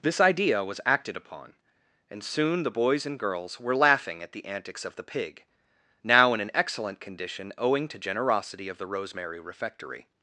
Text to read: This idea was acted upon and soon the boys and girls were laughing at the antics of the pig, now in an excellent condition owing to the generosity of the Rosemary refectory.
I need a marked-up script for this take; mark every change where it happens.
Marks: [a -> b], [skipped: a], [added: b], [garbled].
This idea was acted upon and soon the boys and girls were laughing at the antics of the pig, now in an excellent condition owing to [skipped: the] generosity of the Rosemary refectory.